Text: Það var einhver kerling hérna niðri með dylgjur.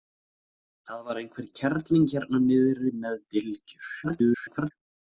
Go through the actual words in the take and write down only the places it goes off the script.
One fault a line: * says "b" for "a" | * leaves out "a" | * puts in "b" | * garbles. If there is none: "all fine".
* garbles